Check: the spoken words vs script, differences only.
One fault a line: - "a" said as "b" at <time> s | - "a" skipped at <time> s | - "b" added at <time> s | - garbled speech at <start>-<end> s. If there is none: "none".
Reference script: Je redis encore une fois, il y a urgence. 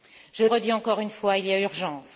none